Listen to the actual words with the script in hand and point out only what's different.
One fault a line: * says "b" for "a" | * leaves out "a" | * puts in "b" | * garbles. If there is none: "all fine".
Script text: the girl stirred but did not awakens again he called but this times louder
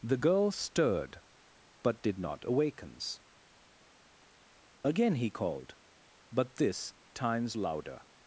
all fine